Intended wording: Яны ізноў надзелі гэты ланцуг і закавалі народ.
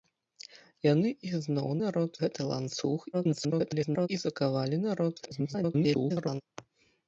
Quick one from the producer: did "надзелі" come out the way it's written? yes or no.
no